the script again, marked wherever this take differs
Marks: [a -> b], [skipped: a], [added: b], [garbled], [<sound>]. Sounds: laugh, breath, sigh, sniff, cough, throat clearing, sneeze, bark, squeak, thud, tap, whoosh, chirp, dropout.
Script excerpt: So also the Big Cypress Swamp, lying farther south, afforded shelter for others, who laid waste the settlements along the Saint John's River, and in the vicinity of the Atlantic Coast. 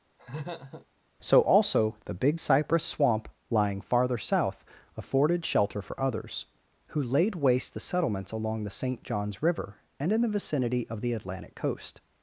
[laugh] So also the Big Cypress Swamp, lying farther south, afforded shelter for others, who laid waste the settlements along the Saint John's River, and in the vicinity of the Atlantic Coast.